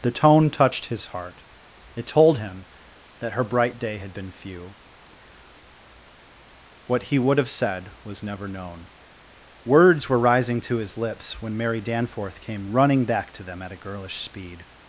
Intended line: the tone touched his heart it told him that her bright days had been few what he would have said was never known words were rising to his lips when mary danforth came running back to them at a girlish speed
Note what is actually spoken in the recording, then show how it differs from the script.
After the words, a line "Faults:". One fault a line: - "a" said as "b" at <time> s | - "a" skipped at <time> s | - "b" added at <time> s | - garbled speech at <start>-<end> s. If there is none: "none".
the tone touched his heart it told him that her bright day had been few what he would have said was never known words were rising to his lips when mary danforth came running back to them at a girlish speed
Faults:
- "days" said as "day" at 3.8 s